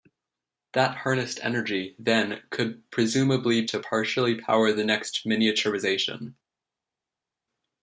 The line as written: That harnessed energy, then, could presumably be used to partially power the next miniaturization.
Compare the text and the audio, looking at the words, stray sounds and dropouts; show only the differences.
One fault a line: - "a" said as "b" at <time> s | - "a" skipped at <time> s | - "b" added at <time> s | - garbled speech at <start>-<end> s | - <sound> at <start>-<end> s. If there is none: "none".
- "be used" skipped at 3.7 s